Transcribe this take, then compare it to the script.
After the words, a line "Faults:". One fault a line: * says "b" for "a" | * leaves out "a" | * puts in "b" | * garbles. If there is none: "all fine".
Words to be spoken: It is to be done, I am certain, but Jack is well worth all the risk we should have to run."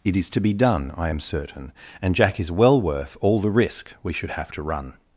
It is to be done, I am certain, and Jack is well worth all the risk we should have to run."
Faults:
* says "and" for "but"